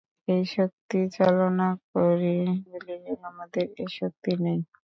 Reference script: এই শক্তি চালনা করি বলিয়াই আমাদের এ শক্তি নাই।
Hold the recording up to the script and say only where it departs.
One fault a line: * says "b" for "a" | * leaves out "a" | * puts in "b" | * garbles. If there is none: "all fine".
all fine